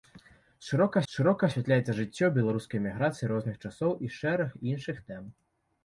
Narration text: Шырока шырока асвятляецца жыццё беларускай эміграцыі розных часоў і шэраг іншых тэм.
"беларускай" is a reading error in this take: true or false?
false